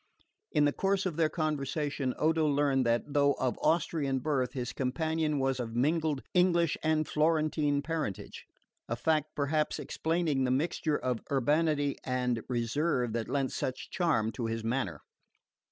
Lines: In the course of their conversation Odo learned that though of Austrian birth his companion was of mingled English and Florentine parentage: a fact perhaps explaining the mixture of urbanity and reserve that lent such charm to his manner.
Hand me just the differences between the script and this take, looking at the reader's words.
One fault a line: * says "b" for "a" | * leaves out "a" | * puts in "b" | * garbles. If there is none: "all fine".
all fine